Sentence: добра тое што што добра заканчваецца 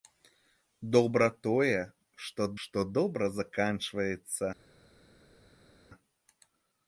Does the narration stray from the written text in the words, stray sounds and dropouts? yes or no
no